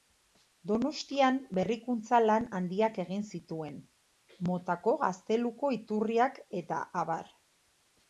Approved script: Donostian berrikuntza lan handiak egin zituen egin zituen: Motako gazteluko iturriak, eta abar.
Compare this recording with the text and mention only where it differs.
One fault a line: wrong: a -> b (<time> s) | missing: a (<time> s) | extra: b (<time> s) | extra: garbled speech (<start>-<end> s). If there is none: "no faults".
missing: egin zituen (3.8 s)